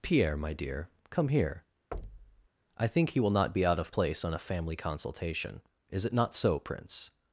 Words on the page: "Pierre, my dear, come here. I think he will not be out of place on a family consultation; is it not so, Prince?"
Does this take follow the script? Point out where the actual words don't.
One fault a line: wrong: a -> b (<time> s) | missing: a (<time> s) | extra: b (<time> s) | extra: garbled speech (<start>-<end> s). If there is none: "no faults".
no faults